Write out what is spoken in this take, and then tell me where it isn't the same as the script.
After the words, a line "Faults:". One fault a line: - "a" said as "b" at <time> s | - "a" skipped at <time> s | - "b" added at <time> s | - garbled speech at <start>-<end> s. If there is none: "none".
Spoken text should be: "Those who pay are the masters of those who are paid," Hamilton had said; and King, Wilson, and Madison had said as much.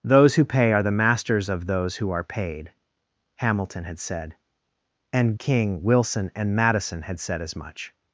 "Those who pay are the masters of those who are paid," Hamilton had said; and King, Wilson, and Madison had said as much.
Faults:
none